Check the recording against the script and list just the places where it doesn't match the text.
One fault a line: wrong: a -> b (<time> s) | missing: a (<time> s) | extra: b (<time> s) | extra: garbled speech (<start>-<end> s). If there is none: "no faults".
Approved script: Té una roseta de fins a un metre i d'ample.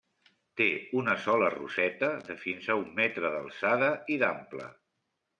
extra: sola (1.2 s)
extra: d'alçada (3.3 s)